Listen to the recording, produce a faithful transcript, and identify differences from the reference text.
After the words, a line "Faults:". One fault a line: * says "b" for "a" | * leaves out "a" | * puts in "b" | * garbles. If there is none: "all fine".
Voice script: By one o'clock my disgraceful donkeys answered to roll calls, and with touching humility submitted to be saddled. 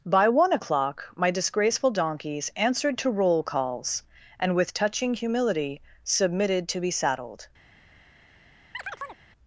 By one o'clock my disgraceful donkeys answered to roll calls, and with touching humility submitted to be saddled.
Faults:
all fine